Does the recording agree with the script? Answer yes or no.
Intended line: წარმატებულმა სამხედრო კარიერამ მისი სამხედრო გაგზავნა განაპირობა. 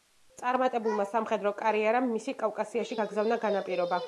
no